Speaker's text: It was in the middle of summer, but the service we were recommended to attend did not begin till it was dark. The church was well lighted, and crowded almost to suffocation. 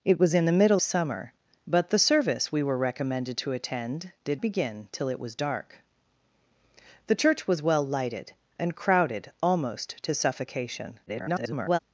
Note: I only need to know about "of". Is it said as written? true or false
false